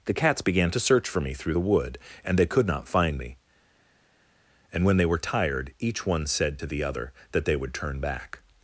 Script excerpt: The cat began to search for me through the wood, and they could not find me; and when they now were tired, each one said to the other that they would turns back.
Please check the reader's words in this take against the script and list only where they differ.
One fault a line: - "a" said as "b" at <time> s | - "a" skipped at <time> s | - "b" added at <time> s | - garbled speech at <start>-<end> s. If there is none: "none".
- "cat" said as "cats" at 0.1 s
- "now" skipped at 5.1 s
- "turns" said as "turn" at 7.7 s